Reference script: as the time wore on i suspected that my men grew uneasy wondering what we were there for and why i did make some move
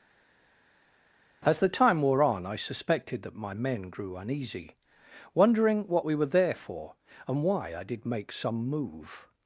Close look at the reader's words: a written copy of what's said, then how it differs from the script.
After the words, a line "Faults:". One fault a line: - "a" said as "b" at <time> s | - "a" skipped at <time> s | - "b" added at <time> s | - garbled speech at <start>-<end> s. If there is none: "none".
as the time wore on i suspected that my men grew uneasy wondering what we were there for and why i did make some move
Faults:
none